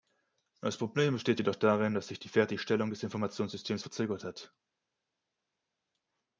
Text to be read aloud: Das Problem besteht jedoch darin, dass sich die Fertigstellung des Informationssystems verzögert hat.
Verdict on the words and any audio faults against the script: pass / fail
pass